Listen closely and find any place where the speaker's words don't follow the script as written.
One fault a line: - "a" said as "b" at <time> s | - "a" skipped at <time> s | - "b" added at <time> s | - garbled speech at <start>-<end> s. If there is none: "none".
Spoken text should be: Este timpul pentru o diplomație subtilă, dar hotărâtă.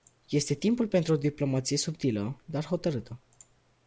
none